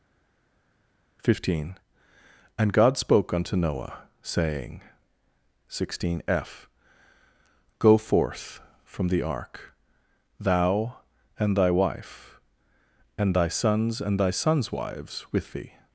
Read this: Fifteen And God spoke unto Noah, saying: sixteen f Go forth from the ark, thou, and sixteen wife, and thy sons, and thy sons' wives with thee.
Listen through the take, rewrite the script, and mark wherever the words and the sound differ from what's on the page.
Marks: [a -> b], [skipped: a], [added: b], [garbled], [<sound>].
Fifteen And God spoke unto Noah, saying: sixteen f Go forth from the ark, thou, and [sixteen -> thy] wife, and thy sons, and thy sons' wives with thee.